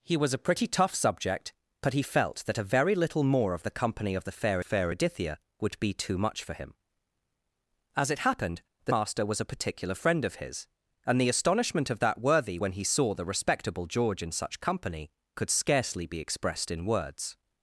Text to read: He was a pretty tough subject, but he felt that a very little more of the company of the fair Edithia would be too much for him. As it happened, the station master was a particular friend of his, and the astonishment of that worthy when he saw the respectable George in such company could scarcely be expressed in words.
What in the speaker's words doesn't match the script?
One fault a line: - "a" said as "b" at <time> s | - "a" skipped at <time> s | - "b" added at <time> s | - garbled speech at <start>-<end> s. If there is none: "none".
- "fair" added at 4.6 s
- "station" skipped at 8.9 s